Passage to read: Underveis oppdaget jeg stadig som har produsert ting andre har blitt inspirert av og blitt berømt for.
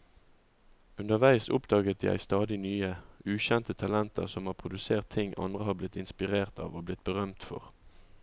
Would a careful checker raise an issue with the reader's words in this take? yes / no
yes